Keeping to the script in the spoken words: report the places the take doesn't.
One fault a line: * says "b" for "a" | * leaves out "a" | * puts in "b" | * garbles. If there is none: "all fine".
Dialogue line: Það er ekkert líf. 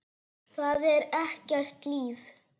all fine